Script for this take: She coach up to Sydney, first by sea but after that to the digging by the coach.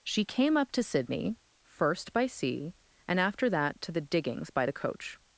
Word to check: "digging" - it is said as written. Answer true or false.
false